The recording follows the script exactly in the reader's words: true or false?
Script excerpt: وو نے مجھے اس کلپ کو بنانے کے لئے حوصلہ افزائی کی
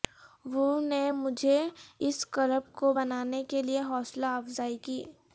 true